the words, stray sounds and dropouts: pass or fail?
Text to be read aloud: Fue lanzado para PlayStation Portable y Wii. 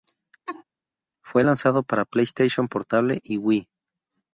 fail